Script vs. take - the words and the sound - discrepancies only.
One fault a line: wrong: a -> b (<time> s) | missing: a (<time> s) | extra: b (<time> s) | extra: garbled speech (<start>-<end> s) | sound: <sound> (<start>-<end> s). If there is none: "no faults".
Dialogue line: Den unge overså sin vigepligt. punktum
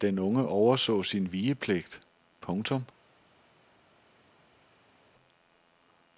no faults